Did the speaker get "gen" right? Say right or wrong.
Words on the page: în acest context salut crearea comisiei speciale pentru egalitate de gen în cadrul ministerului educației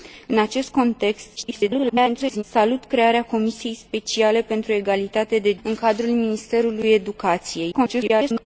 wrong